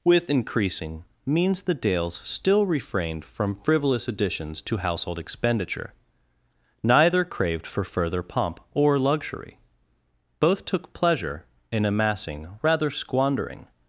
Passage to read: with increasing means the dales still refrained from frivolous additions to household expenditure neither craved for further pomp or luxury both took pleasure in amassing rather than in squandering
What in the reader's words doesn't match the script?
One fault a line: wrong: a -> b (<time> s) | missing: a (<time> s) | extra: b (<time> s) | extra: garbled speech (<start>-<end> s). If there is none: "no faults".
missing: than in (12.9 s)